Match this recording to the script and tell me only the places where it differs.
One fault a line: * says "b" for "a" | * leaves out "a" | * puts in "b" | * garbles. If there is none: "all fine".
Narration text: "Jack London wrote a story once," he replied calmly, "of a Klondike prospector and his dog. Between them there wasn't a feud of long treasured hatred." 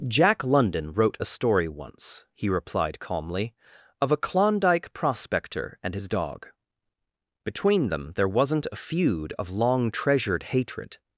all fine